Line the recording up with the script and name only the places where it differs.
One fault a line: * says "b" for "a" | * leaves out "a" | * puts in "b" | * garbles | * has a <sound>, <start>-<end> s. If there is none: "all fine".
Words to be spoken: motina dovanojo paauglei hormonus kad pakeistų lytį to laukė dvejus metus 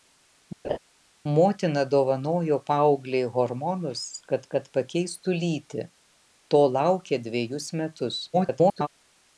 * has a laugh, 0.6-0.8 s
* puts in "kad"
* garbles